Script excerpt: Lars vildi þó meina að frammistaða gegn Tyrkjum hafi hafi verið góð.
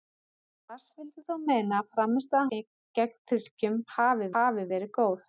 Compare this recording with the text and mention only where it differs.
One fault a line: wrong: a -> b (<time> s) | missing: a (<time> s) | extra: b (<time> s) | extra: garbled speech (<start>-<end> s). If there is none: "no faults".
no faults